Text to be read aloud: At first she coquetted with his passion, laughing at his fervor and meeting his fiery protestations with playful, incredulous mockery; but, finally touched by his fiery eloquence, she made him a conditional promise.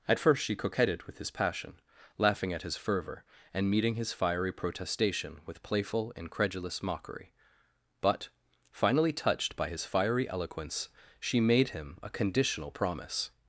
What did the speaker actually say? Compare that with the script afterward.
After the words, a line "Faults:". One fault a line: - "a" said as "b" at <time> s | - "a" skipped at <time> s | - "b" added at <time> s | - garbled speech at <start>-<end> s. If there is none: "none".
At first she coquetted with his passion, laughing at his fervor and meeting his fiery protestation with playful, incredulous mockery; but, finally touched by his fiery eloquence, she made him a conditional promise.
Faults:
- "protestations" said as "protestation" at 4.5 s